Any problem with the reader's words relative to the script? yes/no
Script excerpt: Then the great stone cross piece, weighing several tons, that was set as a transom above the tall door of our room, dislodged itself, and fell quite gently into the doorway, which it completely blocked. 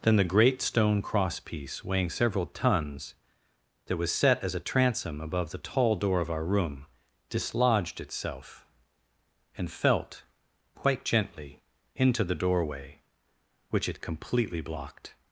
yes